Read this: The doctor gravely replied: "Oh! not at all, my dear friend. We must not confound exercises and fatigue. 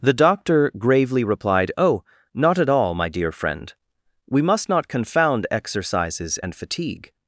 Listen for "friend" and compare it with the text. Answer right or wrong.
right